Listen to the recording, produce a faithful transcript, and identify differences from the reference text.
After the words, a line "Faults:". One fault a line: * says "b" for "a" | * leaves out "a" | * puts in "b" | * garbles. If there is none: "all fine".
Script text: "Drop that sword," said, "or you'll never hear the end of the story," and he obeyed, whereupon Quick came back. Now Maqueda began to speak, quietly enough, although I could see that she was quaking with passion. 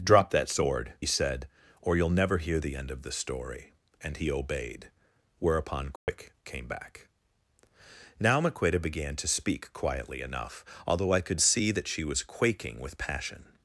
"Drop that sword," said, "or you'll never hear the end of the story," and he obeyed, whereupon Quick came back. Now Maqueda began to speak, quietly enough, although I could see that she was quaking with passion.
Faults:
all fine